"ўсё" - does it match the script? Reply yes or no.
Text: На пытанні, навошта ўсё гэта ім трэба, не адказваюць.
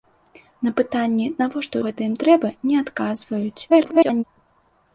no